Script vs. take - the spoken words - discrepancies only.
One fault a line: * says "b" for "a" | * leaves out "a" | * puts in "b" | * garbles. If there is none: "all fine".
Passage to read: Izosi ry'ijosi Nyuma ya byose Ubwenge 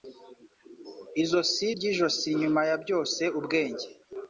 all fine